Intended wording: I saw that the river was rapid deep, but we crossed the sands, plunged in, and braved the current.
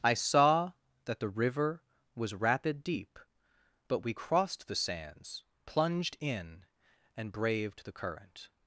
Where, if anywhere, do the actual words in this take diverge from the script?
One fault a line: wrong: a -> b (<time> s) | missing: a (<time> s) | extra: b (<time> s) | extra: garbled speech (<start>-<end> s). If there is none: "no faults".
no faults